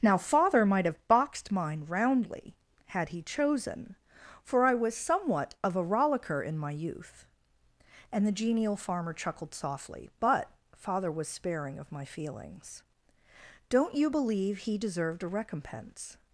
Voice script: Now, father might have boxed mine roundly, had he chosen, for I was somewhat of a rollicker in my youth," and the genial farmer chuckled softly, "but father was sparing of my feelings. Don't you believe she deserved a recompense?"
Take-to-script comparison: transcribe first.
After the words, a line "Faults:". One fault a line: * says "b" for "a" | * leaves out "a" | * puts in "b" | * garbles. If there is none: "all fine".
Now, father might have boxed mine roundly, had he chosen, for I was somewhat of a rollicker in my youth," and the genial farmer chuckled softly, "but father was sparing of my feelings. Don't you believe he deserved a recompense?"
Faults:
* says "he" for "she"